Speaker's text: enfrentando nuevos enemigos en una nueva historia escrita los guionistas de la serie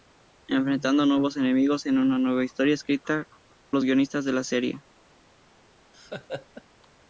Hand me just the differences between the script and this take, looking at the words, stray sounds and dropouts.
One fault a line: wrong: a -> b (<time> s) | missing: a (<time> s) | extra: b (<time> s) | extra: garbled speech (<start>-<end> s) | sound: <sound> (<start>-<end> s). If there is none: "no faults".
sound: laugh (5.9-6.6 s)